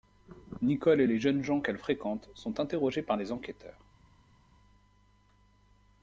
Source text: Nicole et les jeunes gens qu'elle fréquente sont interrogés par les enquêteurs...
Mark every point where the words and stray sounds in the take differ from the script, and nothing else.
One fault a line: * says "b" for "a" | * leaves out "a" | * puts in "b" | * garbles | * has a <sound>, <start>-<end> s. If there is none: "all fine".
all fine